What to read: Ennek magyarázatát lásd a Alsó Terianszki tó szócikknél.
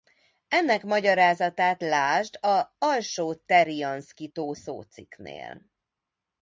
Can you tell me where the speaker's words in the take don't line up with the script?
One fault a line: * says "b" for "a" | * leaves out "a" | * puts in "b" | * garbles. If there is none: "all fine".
all fine